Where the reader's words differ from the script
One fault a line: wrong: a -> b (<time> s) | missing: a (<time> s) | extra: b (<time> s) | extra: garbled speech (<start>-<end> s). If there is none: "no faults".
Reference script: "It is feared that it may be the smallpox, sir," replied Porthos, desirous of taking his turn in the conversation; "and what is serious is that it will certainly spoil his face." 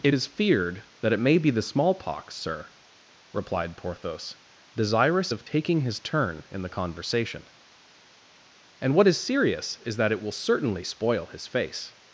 no faults